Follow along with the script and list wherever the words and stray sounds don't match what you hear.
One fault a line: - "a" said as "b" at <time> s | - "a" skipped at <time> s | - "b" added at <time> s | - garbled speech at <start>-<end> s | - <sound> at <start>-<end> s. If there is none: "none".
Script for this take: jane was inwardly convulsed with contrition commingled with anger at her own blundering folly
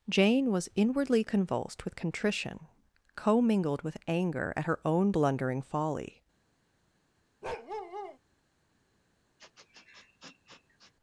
- bark at 7.4-8.2 s
- sniff at 9.4-10.9 s